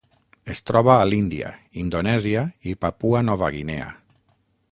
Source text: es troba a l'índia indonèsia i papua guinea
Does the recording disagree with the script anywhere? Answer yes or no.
yes